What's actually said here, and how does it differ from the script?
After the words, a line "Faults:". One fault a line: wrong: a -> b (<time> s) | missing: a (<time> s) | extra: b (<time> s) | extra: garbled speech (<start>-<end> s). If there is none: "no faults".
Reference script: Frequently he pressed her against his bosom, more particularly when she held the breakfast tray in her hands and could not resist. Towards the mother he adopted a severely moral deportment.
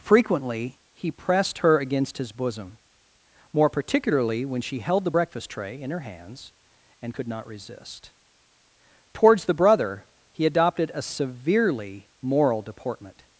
Frequently he pressed her against his bosom, more particularly when she held the breakfast tray in her hands and could not resist. Towards the brother he adopted a severely moral deportment.
Faults:
wrong: mother -> brother (9.5 s)